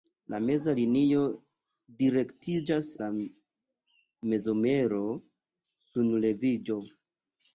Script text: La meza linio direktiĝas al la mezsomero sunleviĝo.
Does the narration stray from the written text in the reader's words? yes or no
yes